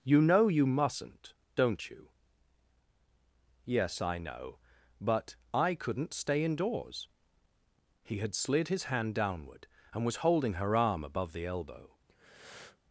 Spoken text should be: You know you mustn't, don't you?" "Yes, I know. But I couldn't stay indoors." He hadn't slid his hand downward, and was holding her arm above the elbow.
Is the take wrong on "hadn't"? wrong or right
wrong